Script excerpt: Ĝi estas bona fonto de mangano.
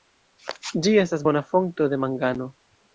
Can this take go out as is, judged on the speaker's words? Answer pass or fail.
pass